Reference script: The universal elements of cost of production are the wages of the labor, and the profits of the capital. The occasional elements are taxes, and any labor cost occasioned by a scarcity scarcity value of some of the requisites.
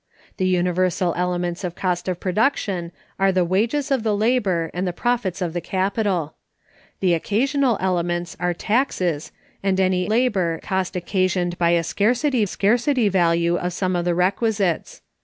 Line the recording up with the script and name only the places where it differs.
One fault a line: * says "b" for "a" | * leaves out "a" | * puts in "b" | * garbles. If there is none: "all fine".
all fine